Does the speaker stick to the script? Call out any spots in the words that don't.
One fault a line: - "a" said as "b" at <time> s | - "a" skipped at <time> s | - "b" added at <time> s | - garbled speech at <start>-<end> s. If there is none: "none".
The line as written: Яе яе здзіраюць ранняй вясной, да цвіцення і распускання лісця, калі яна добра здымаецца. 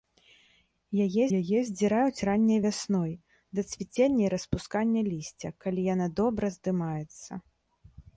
none